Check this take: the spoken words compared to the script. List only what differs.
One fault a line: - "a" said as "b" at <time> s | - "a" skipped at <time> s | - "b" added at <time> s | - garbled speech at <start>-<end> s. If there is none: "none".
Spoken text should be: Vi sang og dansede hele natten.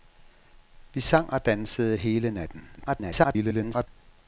- garbled speech at 2.8-3.9 s